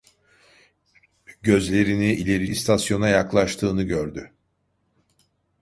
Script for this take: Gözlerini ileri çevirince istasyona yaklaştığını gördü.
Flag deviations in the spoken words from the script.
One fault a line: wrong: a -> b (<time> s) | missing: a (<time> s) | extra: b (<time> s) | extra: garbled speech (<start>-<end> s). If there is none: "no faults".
missing: çevirince (2.5 s)